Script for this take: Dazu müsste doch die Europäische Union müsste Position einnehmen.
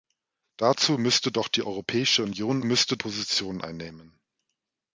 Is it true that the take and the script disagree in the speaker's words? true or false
false